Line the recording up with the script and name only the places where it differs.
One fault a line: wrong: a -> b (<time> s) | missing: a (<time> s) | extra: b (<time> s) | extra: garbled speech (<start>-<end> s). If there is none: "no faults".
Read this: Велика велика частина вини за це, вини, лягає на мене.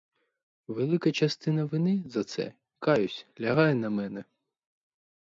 missing: велика (1.1 s)
wrong: вини -> каюсь (2.8 s)